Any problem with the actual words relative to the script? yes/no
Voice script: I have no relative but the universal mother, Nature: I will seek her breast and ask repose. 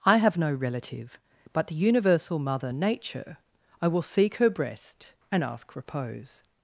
no